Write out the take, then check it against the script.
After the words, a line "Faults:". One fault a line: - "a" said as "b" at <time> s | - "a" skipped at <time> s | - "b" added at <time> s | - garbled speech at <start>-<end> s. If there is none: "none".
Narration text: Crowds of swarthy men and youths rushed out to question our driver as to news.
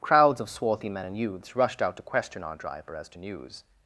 Crowds of swarthy men and youths rushed out to question our driver as to news.
Faults:
none